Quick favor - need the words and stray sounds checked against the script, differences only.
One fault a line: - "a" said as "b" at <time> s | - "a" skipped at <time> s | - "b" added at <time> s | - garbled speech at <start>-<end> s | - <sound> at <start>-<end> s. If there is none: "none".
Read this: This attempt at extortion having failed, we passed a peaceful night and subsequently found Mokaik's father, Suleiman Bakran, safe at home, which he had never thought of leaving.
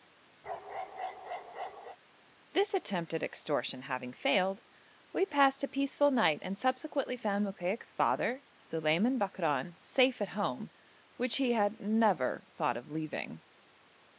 - bark at 0.4-2.0 s